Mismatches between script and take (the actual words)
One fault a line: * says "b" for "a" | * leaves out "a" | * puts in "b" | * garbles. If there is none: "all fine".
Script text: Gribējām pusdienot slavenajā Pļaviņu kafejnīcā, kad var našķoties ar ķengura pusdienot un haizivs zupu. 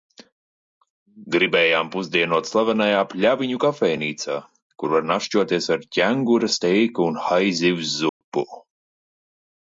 * says "kur" for "kad"
* says "steiku" for "pusdienot"